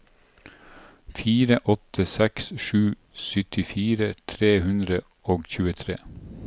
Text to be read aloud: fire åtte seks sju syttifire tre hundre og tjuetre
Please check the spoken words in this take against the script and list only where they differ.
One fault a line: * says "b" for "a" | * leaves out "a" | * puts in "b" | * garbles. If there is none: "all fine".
all fine